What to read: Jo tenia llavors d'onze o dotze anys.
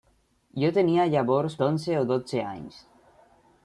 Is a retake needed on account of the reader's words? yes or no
no